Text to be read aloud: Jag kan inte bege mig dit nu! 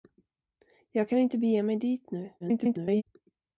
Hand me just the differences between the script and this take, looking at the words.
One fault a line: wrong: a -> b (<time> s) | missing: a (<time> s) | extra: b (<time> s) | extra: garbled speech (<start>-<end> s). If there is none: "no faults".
extra: garbled speech (2.4-3.0 s)